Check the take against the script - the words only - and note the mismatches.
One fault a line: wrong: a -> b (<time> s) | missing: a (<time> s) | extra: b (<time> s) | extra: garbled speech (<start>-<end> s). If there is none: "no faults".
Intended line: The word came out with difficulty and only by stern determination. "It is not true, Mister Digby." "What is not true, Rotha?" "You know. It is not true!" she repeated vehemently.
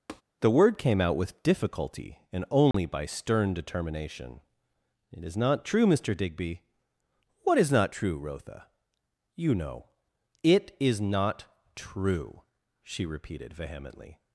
no faults